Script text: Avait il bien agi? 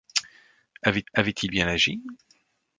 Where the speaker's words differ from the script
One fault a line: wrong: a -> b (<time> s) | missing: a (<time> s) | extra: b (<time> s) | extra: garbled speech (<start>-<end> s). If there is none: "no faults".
extra: avait (1.1 s)